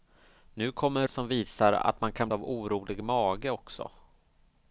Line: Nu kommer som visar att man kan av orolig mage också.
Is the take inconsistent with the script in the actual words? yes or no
no